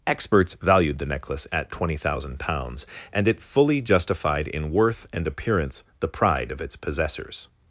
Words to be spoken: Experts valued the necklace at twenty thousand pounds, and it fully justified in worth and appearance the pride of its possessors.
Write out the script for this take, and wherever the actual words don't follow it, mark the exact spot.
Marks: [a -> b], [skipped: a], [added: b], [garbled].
Experts valued the necklace at twenty thousand pounds, and it fully justified in worth and appearance the pride of its possessors.